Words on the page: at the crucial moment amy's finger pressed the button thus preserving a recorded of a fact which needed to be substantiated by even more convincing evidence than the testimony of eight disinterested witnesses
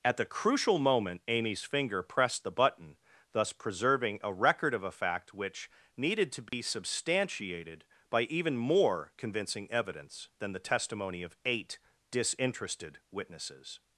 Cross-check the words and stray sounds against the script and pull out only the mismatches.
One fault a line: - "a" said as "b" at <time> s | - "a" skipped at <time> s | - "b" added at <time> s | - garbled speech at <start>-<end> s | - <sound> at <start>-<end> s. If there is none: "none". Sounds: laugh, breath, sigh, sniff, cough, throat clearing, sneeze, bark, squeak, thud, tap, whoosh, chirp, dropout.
- "recorded" said as "record" at 4.3 s
- dropout at 6.5-6.5 s